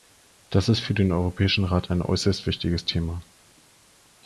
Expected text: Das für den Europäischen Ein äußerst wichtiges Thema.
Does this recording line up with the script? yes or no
no